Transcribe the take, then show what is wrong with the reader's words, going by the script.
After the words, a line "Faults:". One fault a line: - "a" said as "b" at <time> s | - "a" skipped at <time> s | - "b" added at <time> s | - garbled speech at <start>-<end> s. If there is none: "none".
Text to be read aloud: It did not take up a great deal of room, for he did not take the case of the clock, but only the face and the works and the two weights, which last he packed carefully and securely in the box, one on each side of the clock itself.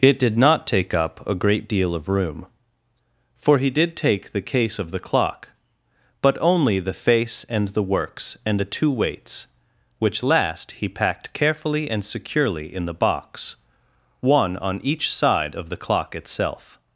It did not take up a great deal of room, for he did take the case of the clock, but only the face and the works and the two weights, which last he packed carefully and securely in the box, one on each side of the clock itself.
Faults:
- "not" skipped at 4.0 s